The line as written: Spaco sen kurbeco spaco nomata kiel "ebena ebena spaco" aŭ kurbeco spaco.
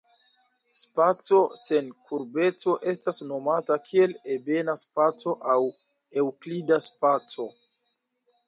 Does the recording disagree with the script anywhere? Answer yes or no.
yes